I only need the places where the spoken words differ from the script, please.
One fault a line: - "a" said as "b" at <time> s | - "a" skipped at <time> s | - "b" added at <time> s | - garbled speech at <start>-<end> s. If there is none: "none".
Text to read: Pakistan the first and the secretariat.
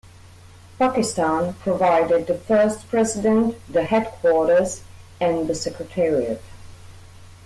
- "provided" added at 1.6 s
- "president the headquarters" added at 2.9 s